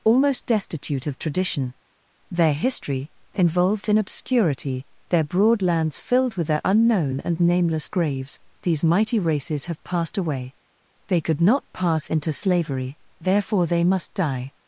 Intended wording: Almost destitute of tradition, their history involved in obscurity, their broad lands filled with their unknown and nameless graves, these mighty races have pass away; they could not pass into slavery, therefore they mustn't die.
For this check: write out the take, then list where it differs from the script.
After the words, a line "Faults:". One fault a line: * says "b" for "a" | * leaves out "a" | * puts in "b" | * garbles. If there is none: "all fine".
Almost destitute of tradition, their history involved in obscurity, their broad lands filled with their unknown and nameless graves, these mighty races have passed away; they could not pass into slavery, therefore they must die.
Faults:
* says "passed" for "pass"
* says "must" for "mustn't"